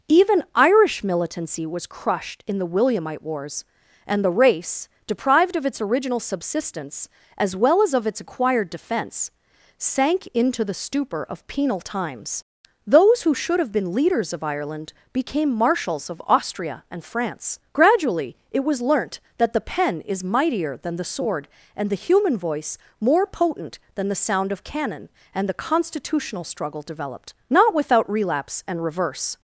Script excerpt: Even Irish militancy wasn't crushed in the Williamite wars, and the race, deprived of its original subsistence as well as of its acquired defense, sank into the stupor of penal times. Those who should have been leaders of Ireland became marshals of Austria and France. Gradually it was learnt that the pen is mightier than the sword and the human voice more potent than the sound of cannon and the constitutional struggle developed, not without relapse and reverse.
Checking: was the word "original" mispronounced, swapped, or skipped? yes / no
no